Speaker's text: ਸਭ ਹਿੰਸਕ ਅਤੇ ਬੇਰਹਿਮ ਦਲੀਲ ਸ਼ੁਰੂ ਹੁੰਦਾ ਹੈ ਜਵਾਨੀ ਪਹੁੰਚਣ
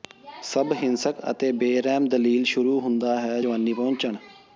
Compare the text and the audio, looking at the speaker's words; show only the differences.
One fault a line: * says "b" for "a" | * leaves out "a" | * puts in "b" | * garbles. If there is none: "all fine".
all fine